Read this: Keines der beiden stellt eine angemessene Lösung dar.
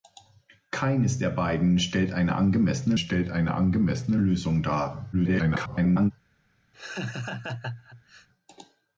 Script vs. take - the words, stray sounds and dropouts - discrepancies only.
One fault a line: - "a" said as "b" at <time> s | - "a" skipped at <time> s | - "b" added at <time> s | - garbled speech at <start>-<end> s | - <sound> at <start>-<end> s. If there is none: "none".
- "stellt eine angemessene" added at 2.9 s
- garbled speech at 5.1-6.1 s
- laugh at 6.7-8.3 s